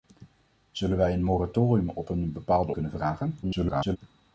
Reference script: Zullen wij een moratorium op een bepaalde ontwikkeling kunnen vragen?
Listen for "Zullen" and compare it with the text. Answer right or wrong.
right